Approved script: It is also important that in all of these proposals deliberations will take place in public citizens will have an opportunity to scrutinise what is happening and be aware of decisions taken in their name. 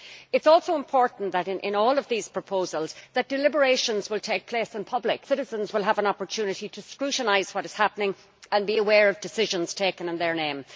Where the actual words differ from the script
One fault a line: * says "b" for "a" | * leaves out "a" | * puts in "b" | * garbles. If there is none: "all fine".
all fine